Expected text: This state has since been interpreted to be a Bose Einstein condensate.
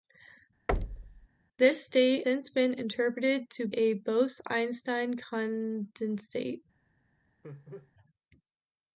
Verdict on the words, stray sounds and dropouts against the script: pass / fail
fail